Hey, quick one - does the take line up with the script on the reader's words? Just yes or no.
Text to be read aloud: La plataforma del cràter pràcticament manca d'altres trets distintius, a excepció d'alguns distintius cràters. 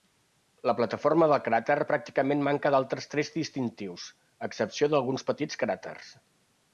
no